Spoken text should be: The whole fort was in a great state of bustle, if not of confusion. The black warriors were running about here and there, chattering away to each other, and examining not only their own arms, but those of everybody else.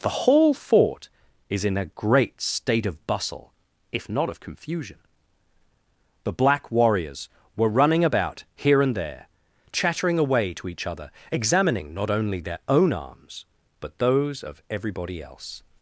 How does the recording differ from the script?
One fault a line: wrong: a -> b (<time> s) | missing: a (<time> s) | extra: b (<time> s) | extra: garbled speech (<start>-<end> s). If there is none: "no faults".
wrong: was -> is (1.5 s)
missing: and (11.1 s)